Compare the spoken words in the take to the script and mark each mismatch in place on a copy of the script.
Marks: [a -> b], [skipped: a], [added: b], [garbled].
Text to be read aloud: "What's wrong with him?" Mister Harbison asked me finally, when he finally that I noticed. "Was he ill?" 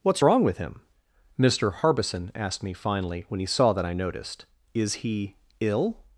"What's wrong with him?" Mister Harbison asked me finally, when he [finally -> saw] that I noticed. ["Was -> Is] he ill?"